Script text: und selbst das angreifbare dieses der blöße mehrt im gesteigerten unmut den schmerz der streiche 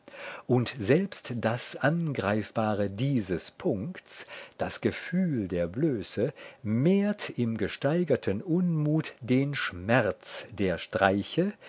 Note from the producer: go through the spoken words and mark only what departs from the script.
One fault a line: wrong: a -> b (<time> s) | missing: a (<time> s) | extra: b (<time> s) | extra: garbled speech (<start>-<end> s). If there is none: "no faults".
extra: punkts das gefühl (3.5 s)